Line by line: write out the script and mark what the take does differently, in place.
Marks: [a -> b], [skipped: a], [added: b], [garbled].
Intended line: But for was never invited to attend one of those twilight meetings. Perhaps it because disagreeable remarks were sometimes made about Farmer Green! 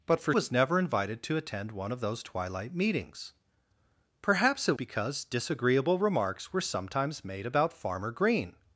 But for was never invited to attend one of those twilight meetings. Perhaps it because disagreeable remarks were sometimes made about Farmer Green!